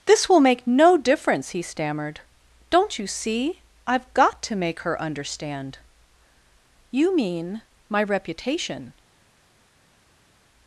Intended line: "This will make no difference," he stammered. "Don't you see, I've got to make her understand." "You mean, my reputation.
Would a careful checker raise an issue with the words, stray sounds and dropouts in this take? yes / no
no